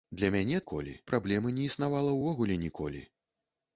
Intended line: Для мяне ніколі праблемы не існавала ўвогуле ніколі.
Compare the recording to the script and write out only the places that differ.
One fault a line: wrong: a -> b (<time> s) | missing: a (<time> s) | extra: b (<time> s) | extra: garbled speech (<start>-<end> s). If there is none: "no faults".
no faults